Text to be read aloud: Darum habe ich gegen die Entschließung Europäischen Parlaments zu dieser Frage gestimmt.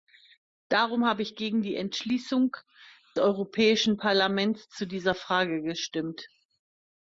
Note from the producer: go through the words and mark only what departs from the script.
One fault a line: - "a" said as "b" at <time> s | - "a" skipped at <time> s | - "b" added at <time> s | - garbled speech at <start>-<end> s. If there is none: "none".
none